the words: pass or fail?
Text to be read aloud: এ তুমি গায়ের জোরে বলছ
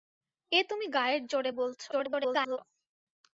fail